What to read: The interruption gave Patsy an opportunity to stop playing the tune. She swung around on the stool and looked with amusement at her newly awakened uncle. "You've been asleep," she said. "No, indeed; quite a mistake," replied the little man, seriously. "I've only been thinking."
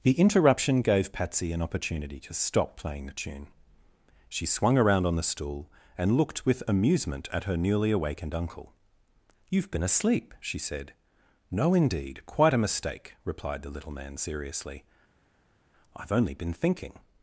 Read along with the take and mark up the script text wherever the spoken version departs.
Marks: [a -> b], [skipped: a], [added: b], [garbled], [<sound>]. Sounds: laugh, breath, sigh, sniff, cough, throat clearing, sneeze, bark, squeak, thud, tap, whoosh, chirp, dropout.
The interruption gave Patsy an opportunity to stop playing the tune. She swung around on the stool and looked with amusement at her newly awakened uncle. "You've been asleep," she said. "No, indeed; quite a mistake," replied the little man, seriously. "I've only been thinking."